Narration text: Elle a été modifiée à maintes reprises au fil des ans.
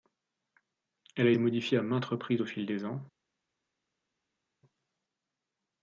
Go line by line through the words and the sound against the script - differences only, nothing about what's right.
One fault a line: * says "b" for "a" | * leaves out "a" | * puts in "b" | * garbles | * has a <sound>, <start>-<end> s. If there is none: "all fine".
* leaves out "été"